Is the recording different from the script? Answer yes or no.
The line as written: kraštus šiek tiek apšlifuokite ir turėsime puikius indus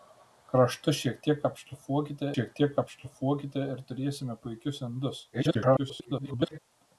yes